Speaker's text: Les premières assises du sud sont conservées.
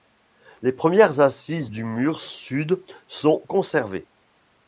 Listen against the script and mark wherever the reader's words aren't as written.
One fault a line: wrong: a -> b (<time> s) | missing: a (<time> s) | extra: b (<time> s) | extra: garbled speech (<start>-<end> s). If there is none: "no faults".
extra: mur (1.8 s)